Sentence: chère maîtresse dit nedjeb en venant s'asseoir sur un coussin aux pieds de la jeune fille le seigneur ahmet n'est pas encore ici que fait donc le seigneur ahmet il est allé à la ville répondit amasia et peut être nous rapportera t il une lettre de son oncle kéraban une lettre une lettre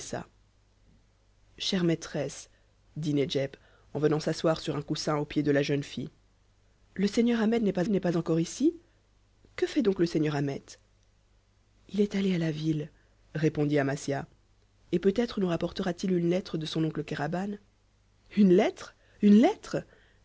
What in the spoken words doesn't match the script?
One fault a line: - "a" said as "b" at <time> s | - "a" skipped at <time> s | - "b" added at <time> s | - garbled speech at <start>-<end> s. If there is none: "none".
- "n'est pas" added at 7.9 s